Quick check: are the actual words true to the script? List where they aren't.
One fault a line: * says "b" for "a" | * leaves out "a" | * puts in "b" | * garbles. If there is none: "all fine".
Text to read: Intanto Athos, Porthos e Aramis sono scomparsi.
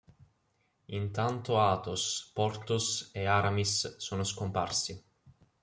all fine